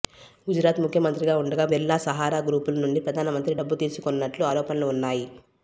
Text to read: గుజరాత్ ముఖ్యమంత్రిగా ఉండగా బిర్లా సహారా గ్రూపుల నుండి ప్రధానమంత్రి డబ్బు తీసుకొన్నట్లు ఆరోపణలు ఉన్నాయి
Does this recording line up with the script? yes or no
yes